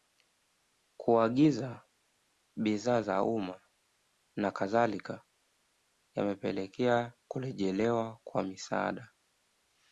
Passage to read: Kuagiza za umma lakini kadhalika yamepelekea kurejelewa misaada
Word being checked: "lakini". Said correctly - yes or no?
no